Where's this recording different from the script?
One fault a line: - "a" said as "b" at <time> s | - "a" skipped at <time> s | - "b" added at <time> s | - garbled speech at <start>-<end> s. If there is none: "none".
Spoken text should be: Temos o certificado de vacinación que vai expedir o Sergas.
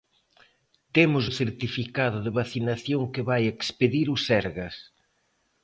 none